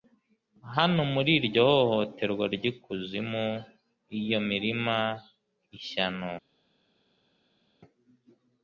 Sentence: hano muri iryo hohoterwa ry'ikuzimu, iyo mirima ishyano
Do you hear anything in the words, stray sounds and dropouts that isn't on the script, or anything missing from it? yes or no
no